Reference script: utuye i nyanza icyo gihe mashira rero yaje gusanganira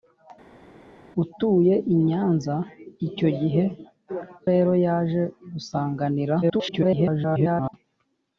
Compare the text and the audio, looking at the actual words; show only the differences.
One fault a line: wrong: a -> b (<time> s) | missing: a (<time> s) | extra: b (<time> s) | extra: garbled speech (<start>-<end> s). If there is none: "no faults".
missing: mashira (3.6 s)
extra: garbled speech (6.4-7.7 s)